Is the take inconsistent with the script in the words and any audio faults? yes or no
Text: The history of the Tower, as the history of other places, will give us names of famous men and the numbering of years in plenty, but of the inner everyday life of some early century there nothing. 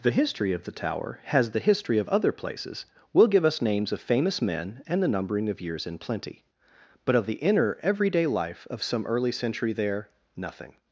yes